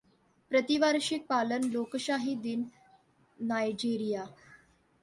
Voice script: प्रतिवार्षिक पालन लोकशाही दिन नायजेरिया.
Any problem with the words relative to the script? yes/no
no